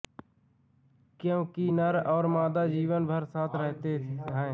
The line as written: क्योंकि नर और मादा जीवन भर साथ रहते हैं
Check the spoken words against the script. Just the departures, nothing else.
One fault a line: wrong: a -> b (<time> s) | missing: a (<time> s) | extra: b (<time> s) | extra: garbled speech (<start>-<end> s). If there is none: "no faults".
no faults